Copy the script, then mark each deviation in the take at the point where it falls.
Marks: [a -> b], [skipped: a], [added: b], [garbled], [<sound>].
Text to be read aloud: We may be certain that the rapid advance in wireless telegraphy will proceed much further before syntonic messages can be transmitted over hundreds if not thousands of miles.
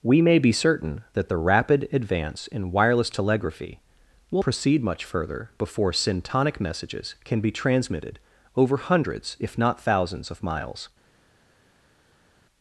We may be certain that the rapid advance in wireless telegraphy will proceed much further before syntonic messages can be transmitted over hundreds if not thousands of miles.